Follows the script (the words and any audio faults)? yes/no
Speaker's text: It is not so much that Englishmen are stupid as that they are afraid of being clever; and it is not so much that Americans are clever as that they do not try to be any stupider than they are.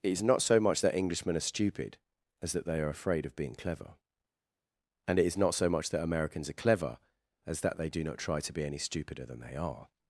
yes